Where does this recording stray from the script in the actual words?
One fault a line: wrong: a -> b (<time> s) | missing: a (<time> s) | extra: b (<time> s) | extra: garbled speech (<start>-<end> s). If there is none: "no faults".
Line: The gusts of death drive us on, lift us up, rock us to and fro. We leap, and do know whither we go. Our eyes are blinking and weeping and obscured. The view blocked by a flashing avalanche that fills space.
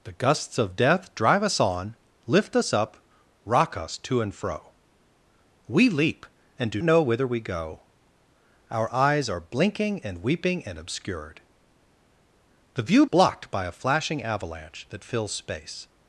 no faults